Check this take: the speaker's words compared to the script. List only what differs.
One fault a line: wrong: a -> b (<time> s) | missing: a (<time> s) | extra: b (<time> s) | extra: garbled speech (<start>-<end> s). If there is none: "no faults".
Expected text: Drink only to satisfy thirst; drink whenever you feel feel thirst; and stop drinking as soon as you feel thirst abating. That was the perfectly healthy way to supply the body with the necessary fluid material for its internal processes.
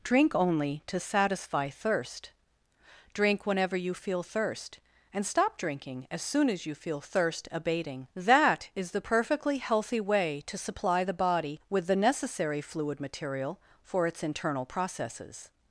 missing: feel (4.2 s)
wrong: was -> is (8.7 s)